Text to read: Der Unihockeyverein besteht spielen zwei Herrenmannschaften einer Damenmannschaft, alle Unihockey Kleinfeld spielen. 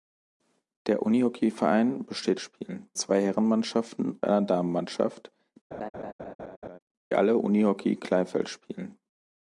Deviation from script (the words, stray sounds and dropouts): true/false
true